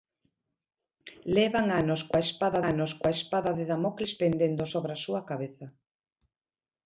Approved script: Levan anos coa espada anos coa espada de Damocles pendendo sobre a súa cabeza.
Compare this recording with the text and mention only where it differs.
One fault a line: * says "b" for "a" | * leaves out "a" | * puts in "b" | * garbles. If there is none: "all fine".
all fine